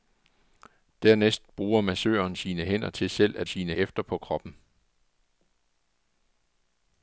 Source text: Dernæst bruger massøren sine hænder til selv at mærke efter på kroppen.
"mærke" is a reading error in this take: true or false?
true